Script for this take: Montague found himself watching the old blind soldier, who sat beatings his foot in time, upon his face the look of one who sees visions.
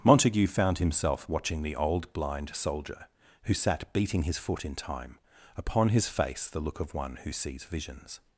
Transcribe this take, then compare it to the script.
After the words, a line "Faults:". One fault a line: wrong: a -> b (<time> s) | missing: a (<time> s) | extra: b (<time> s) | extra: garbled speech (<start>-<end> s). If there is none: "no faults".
Montague found himself watching the old blind soldier, who sat beating his foot in time, upon his face the look of one who sees visions.
Faults:
wrong: beatings -> beating (3.9 s)